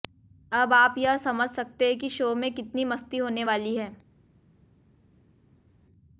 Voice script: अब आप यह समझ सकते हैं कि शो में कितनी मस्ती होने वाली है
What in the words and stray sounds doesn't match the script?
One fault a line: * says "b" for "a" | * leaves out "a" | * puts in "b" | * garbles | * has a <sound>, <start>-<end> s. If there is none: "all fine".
all fine